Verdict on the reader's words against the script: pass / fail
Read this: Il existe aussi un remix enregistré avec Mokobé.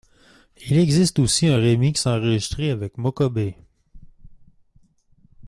pass